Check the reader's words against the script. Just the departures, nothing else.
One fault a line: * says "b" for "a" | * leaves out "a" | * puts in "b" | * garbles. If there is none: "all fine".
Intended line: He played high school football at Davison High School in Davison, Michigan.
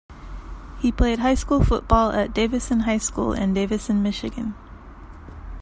all fine